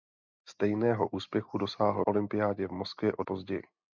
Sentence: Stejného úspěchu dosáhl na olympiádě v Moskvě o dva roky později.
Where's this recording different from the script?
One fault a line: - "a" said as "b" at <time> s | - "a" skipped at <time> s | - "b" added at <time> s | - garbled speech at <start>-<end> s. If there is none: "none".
- "na" skipped at 2.0 s
- "dva roky" skipped at 3.2 s